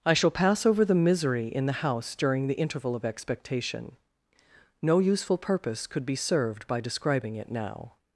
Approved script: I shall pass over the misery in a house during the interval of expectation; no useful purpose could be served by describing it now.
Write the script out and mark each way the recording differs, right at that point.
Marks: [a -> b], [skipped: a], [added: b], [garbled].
I shall pass over the misery in [a -> the] house during the interval of expectation; no useful purpose could be served by describing it now.